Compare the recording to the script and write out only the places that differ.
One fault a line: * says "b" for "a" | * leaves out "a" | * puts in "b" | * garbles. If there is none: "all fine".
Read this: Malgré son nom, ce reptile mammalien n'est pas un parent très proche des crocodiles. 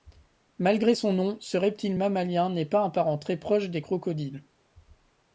all fine